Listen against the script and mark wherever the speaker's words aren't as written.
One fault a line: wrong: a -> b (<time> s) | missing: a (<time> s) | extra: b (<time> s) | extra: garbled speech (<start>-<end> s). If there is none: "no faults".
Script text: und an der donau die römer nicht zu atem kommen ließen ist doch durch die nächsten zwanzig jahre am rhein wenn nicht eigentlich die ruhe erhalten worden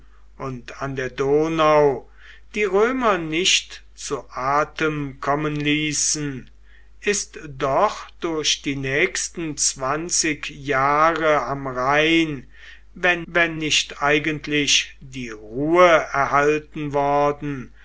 extra: wenn (13.3 s)